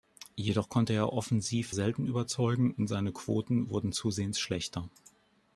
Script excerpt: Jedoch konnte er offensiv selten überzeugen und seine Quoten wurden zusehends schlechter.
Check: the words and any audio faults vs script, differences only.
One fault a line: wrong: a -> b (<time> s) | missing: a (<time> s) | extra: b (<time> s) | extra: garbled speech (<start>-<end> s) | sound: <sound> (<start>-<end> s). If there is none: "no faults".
no faults